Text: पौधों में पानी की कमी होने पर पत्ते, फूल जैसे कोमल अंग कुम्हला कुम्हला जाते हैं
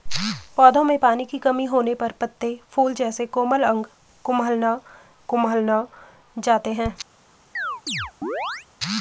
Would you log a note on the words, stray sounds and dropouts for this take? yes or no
yes